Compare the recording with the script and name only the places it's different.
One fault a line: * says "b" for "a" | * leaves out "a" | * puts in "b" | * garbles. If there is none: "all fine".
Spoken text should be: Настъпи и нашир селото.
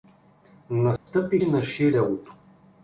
all fine